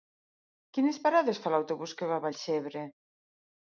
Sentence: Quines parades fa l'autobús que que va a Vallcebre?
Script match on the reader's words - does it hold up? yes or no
no